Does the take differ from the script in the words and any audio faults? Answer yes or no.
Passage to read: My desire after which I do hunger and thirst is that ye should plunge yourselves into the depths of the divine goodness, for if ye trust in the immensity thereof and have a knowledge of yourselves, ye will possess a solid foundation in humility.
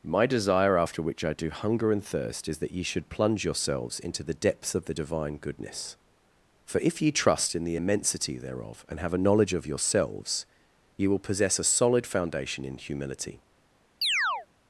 yes